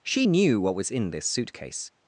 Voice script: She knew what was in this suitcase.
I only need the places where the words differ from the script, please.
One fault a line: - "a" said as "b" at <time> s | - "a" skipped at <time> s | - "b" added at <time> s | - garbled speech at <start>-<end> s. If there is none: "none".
none